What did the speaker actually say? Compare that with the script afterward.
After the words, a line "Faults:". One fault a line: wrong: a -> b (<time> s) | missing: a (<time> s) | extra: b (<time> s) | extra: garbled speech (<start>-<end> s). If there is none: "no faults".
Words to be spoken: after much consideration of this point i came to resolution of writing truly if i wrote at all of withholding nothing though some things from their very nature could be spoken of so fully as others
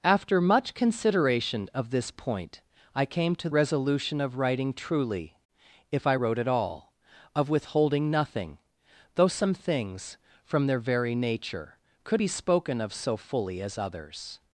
after much consideration of this point i came to resolution of writing truly if i wrote at all of withholding nothing though some things from their very nature could be spoken of so fully as others
Faults:
no faults